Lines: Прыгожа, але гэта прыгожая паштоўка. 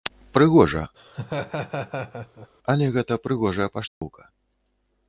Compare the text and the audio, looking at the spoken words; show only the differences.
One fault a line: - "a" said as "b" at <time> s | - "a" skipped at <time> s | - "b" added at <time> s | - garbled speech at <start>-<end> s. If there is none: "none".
none